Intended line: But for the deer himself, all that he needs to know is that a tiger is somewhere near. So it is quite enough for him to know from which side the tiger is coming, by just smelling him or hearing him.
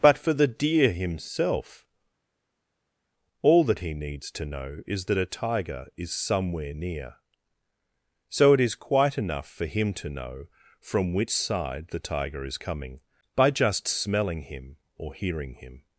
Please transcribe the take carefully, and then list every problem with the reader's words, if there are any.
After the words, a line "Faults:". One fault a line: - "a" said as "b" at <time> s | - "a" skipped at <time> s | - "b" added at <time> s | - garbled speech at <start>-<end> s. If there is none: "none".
But for the deer himself, all that he needs to know is that a tiger is somewhere near. So it is quite enough for him to know from which side the tiger is coming, by just smelling him or hearing him.
Faults:
none